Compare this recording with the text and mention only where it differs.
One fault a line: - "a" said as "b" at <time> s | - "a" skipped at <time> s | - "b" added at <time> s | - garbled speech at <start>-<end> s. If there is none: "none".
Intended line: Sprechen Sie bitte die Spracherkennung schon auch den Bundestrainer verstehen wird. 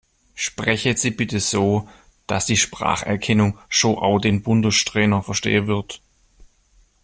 - "so dass" added at 1.4 s